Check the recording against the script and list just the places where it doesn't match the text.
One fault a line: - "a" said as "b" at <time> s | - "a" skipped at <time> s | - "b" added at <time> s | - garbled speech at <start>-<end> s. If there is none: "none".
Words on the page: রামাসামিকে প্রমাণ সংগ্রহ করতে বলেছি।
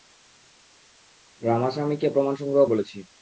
- "করতে" skipped at 2.6 s